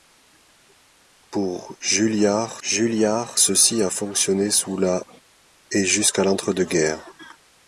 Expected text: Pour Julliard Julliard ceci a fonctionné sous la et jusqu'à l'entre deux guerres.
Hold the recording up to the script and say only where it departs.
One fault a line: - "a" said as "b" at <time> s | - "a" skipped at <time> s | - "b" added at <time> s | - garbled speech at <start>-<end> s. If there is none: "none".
none